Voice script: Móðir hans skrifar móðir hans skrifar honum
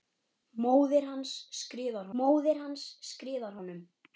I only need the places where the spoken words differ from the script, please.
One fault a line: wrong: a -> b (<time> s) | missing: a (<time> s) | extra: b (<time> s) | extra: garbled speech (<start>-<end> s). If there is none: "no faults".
no faults